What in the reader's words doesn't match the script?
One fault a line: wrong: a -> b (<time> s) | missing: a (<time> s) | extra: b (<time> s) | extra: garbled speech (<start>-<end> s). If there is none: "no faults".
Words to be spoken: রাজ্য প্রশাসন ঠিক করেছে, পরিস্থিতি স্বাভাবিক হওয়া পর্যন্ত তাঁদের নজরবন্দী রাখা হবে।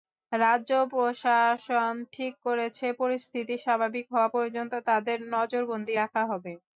no faults